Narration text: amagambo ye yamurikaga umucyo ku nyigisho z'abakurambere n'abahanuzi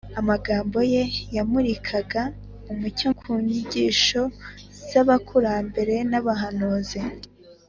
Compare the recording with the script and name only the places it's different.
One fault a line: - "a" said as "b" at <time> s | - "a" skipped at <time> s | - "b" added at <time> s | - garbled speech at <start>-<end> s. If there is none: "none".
none